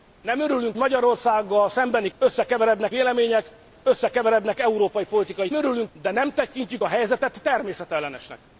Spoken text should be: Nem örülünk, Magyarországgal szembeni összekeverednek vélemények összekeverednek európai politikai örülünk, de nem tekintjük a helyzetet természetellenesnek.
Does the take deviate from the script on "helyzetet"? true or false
false